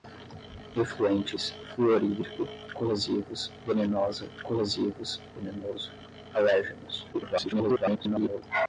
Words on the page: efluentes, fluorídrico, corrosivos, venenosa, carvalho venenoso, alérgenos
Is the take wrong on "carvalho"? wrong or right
wrong